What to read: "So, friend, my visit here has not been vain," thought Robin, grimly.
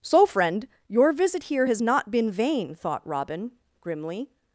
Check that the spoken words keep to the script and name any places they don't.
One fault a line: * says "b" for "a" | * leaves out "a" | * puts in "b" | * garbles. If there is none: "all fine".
* says "your" for "my"